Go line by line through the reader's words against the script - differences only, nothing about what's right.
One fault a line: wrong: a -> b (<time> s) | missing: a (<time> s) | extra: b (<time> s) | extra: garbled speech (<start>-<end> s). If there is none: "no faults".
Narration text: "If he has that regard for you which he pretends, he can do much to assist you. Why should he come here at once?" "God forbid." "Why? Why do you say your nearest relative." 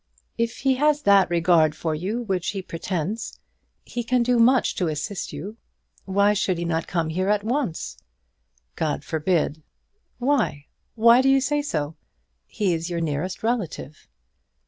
extra: not (6.6 s)
extra: so He is (11.6 s)